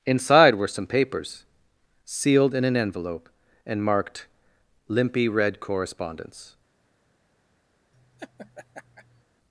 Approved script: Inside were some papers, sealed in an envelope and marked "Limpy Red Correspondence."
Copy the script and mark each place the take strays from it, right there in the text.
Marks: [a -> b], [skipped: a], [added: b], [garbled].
Inside were some papers, sealed in an envelope and marked "Limpy Red Correspondence."